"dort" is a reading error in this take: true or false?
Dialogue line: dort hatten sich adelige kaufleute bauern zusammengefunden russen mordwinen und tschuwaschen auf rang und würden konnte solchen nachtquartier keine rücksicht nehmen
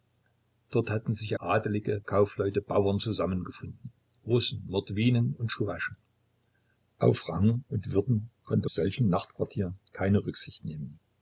false